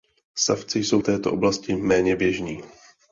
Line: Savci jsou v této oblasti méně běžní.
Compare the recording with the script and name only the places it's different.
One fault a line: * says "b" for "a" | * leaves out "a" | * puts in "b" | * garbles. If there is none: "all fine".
all fine